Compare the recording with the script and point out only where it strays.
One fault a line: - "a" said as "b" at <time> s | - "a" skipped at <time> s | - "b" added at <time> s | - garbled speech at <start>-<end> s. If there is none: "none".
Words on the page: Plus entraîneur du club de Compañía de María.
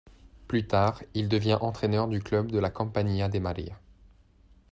- "tard il devient" added at 0.7 s
- "la" added at 2.6 s